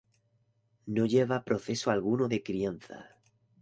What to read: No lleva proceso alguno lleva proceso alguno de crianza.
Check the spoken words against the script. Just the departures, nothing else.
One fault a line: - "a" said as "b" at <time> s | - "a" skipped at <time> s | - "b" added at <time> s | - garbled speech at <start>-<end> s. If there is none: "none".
- "lleva proceso alguno" skipped at 2.3 s